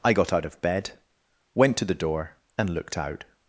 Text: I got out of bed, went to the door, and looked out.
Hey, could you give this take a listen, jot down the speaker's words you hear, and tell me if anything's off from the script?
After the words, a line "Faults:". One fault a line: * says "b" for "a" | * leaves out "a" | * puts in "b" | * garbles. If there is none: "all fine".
I got out of bed, went to the door, and looked out.
Faults:
all fine